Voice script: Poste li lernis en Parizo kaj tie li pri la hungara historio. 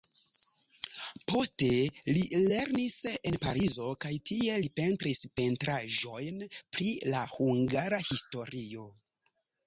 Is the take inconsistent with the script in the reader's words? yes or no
yes